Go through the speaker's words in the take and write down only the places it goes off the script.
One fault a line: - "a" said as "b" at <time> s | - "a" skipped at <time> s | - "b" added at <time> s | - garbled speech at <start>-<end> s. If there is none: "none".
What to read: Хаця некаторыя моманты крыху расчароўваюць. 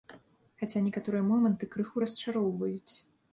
none